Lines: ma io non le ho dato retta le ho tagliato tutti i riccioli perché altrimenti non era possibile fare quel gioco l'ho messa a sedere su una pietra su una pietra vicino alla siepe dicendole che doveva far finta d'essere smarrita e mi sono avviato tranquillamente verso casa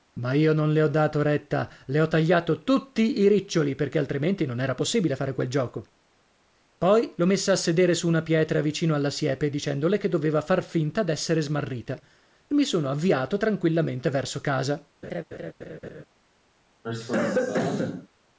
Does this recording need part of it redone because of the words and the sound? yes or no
yes